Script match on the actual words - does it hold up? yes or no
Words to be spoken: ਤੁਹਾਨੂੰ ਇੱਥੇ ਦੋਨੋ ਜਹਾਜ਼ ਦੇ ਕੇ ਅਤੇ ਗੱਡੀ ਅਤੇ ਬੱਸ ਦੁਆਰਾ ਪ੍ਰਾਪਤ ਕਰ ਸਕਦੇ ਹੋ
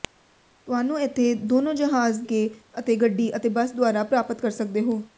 no